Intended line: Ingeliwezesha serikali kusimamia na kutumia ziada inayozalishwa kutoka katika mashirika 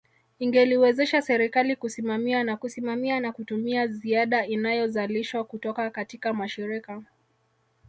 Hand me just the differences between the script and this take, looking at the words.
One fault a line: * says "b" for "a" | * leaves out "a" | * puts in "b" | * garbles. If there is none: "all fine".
* puts in "kusimamia na"